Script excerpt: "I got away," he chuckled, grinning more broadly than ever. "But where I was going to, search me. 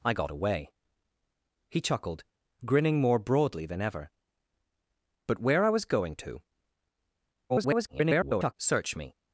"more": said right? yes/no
yes